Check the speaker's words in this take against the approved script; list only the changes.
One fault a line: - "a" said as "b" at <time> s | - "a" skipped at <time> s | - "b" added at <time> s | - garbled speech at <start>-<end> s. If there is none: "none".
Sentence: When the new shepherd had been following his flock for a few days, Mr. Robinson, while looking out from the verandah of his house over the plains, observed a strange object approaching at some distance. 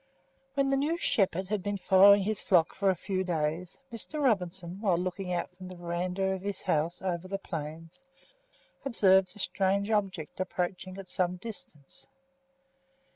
none